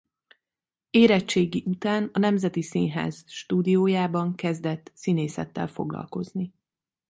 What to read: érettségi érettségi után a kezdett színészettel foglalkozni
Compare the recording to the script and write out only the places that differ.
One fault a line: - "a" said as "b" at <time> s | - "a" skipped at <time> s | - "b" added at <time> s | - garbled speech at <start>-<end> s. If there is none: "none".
- "érettségi" skipped at 1.6 s
- "nemzeti színház stúdiójában" added at 2.2 s